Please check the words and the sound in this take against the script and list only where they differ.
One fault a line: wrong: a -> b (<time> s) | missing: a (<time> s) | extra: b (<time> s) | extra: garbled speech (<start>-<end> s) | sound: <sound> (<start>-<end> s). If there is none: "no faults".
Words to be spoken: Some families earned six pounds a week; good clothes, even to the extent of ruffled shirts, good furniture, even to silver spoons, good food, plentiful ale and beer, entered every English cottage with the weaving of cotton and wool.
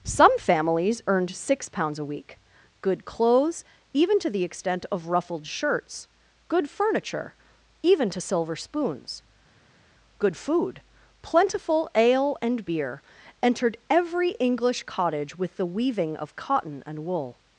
no faults